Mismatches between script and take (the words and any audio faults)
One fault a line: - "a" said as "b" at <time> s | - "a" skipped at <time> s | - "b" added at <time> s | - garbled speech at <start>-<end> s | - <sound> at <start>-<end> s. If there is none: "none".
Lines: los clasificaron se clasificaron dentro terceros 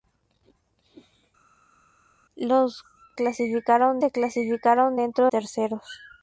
none